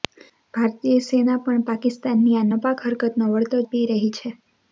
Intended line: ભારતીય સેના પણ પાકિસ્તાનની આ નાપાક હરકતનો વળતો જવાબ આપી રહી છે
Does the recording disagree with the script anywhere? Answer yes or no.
yes